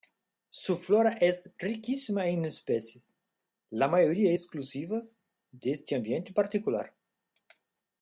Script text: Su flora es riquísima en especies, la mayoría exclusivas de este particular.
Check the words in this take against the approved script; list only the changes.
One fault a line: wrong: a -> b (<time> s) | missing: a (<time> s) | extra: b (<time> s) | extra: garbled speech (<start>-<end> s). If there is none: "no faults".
extra: ambiente (5.9 s)